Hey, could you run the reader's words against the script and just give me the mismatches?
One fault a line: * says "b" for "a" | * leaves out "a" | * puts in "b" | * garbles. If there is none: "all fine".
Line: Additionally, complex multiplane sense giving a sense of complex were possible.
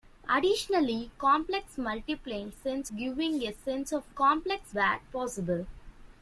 all fine